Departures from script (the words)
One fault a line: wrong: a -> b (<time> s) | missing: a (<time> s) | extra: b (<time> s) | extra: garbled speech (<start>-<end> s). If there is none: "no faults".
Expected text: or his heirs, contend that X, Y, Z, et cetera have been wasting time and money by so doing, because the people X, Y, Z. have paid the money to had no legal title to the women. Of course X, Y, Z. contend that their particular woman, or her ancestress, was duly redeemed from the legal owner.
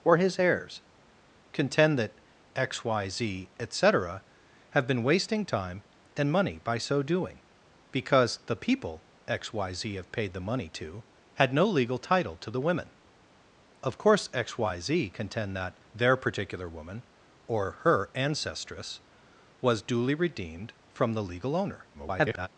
extra: garbled speech (21.9-22.5 s)